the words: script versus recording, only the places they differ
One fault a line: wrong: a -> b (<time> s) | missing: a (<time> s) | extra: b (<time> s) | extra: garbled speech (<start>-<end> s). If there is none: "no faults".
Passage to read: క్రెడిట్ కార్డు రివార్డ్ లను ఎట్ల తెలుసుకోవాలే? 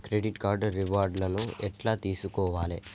no faults